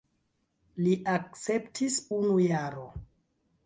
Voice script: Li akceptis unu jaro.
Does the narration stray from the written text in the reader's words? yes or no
no